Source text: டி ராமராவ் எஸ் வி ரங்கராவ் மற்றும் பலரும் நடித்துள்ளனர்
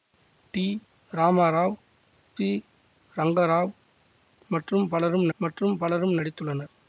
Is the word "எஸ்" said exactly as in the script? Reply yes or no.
no